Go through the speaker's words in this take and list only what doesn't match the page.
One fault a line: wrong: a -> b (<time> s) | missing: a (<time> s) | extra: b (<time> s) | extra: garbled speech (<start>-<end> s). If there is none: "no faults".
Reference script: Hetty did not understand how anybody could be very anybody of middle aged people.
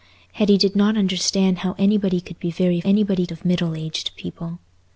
no faults